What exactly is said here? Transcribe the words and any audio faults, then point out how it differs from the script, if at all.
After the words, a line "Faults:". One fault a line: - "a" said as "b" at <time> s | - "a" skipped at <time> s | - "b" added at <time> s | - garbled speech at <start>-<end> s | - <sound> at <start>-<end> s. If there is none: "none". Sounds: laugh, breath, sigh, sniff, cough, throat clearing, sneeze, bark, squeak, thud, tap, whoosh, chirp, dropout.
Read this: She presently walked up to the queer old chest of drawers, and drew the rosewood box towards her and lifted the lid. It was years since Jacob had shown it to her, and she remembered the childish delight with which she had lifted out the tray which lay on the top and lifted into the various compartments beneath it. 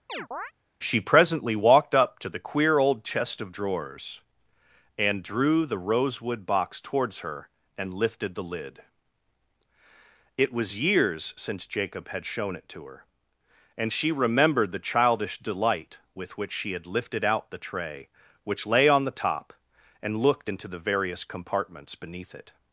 She presently walked up to the queer old chest of drawers, and drew the rosewood box towards her and lifted the lid. It was years since Jacob had shown it to her, and she remembered the childish delight with which she had lifted out the tray which lay on the top and looked into the various compartments beneath it.
Faults:
- chirp at 0.1-0.5 s
- "lifted" said as "looked" at 20.2 s